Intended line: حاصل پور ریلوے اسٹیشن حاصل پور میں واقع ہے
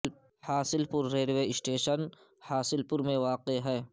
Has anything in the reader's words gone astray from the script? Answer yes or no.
no